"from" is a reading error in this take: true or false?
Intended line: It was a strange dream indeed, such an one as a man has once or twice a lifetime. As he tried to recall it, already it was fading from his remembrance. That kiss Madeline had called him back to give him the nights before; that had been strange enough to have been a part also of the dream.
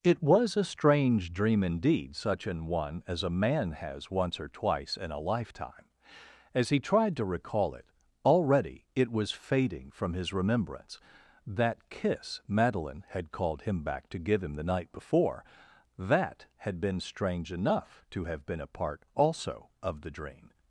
false